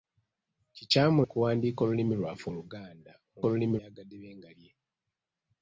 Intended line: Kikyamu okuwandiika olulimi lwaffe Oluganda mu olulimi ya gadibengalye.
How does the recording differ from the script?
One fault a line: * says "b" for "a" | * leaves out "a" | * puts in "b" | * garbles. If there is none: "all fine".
all fine